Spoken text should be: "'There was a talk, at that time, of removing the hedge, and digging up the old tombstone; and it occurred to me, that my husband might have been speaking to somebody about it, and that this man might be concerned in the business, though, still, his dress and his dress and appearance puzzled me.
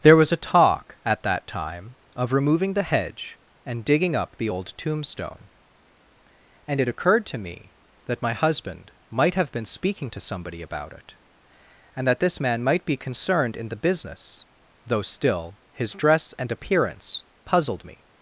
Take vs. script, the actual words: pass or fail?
fail